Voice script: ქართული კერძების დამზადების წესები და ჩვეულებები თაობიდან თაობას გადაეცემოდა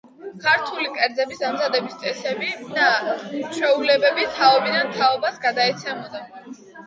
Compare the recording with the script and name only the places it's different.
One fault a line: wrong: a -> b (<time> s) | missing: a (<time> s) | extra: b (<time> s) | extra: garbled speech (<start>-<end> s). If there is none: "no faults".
no faults